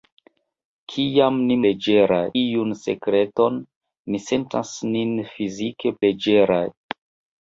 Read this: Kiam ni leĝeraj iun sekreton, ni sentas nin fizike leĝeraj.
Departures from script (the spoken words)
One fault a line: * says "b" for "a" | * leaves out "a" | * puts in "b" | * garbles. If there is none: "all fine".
all fine